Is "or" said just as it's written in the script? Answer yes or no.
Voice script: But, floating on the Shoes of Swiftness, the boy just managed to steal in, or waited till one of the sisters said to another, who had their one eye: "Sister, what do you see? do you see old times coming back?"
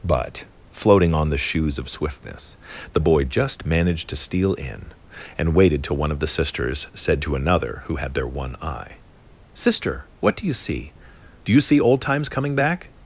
no